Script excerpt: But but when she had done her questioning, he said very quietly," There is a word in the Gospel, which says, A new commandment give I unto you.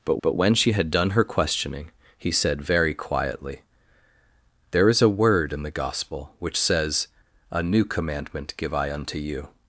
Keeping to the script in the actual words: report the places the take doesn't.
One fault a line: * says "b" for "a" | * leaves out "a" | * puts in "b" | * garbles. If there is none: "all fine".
all fine